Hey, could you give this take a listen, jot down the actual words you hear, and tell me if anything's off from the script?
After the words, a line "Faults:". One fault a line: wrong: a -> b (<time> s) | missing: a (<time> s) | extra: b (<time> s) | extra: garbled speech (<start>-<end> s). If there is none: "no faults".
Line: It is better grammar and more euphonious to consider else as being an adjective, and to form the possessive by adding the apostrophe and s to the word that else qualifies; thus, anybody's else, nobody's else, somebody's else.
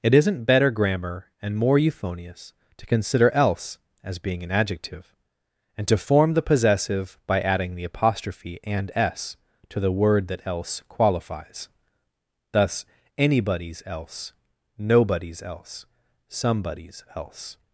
It isn't better grammar and more euphonious to consider else as being an adjective, and to form the possessive by adding the apostrophe and s to the word that else qualifies; thus, anybody's else, nobody's else, somebody's else.
Faults:
wrong: is -> isn't (0.1 s)